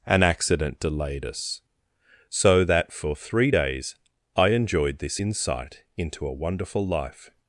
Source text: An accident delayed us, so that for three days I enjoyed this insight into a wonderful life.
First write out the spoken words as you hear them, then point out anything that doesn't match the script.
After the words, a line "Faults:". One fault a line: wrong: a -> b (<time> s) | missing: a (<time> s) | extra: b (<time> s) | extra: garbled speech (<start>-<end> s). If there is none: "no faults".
An accident delayed us, so that for three days I enjoyed this insight into a wonderful life.
Faults:
no faults